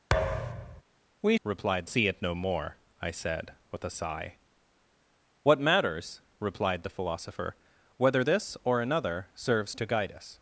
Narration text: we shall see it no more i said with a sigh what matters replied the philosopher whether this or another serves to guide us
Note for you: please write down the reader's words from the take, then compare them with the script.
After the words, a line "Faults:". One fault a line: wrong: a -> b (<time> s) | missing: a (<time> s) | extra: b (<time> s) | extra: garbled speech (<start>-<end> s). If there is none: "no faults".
we replied see it no more i said with a sigh what matters replied the philosopher whether this or another serves to guide us
Faults:
wrong: shall -> replied (1.4 s)